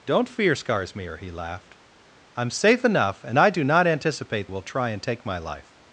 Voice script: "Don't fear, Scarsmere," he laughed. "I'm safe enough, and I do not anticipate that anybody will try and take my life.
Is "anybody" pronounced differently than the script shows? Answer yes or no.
yes